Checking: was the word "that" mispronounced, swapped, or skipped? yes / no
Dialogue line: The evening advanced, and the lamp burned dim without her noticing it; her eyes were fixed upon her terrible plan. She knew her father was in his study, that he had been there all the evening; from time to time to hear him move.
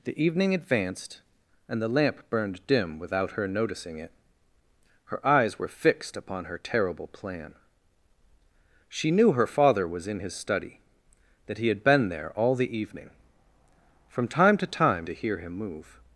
no